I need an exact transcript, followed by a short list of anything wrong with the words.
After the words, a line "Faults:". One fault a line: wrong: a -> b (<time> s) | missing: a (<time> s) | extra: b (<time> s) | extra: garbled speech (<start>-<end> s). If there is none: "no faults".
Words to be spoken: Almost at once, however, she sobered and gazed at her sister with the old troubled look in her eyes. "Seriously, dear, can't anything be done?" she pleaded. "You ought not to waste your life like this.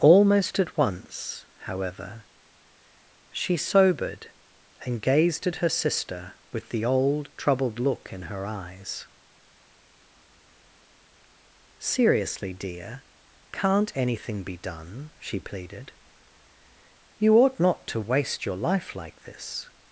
Almost at once, however, she sobered and gazed at her sister with the old troubled look in her eyes. "Seriously, dear, can't anything be done?" she pleaded. "You ought not to waste your life like this.
Faults:
no faults